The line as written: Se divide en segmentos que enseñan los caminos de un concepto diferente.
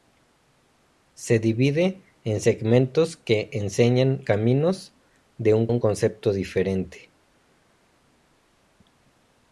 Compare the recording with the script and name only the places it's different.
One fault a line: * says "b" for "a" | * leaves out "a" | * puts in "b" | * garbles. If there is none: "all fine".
* leaves out "los"
* puts in "un"